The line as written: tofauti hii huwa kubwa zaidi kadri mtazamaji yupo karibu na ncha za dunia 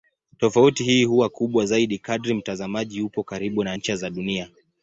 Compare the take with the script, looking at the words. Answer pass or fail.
pass